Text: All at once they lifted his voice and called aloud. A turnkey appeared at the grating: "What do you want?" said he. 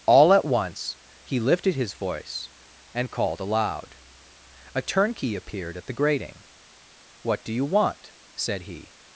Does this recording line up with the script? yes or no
no